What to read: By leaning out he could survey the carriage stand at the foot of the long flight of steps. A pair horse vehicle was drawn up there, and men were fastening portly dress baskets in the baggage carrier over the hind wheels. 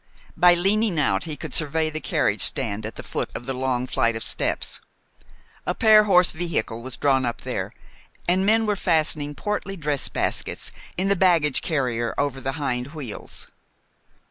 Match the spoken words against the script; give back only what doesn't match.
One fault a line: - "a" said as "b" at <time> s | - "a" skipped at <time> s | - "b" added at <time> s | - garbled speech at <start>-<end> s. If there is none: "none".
none